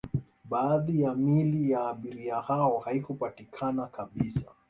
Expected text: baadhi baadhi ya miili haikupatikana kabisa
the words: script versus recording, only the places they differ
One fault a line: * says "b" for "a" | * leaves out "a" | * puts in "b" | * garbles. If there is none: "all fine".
* says "ya miili" for "baadhi"
* says "abiria hao" for "miili"